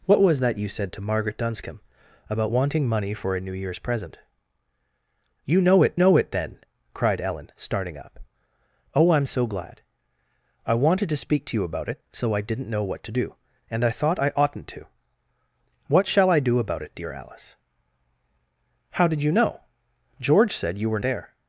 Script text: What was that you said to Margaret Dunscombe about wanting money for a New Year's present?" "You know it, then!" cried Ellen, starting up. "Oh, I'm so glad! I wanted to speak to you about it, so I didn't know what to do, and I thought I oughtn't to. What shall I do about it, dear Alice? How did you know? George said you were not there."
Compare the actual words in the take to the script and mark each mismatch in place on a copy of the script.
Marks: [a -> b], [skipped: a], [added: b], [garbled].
What was that you said to Margaret Dunscombe about wanting money for a New Year's present?" "You know it, [added: know it] then!" cried Ellen, starting up. "Oh, I'm so glad! I wanted to speak to you about it, so I didn't know what to do, and I thought I oughtn't to. What shall I do about it, dear Alice? How did you know? George said you were [skipped: not] there."